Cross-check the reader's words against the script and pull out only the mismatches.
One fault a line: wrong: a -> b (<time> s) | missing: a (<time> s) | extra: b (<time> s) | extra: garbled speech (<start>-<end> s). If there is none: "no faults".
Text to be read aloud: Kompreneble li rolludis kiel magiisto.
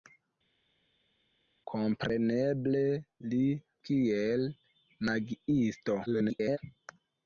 missing: rolludis (3.4 s)
extra: garbled speech (6.1-6.6 s)